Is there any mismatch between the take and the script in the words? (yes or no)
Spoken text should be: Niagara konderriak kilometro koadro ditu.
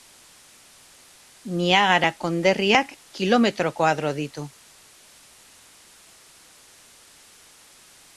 no